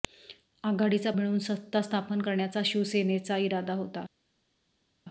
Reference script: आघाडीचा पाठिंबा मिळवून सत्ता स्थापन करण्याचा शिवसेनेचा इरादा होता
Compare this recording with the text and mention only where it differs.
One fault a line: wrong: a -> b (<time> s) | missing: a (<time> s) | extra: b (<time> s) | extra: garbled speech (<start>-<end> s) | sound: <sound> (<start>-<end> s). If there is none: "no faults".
missing: पाठिंबा (1.1 s)